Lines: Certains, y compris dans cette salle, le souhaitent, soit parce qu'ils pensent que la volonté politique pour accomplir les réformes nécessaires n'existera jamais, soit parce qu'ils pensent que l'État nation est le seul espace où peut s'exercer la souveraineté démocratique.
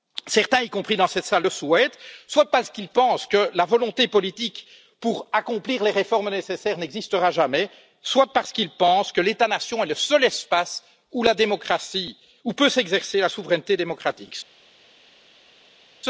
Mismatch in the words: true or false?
false